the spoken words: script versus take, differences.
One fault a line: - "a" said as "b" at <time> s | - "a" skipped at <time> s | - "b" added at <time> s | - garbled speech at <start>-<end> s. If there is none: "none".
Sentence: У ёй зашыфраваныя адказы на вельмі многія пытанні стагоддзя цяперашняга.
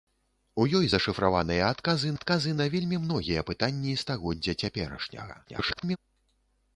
- "адказы" added at 2.2 s
- garbled speech at 5.4-6.0 s